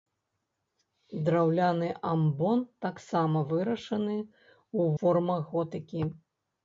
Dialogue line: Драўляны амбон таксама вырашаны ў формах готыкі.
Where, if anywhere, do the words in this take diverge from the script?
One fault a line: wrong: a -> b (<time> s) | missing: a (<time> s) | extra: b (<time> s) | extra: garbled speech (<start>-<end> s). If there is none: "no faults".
no faults